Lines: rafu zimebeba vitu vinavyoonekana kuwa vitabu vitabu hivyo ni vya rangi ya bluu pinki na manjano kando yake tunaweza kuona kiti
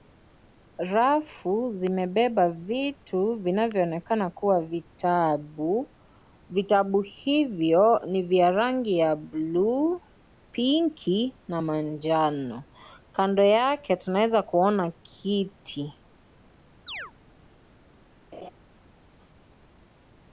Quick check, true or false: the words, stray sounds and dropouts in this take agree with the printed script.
false